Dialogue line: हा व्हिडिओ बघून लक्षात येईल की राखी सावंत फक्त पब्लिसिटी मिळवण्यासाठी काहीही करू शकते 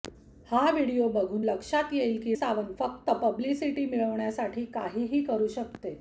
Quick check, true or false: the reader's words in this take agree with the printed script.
false